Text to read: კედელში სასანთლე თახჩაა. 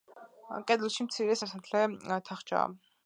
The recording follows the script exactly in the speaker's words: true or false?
false